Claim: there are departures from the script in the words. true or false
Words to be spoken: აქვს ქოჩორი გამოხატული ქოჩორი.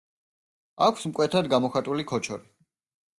true